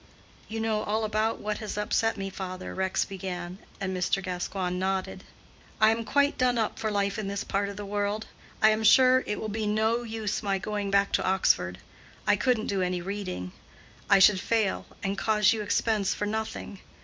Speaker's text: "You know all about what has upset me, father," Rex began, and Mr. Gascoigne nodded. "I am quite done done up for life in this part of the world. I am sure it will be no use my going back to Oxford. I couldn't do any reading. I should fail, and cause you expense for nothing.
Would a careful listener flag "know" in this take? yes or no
no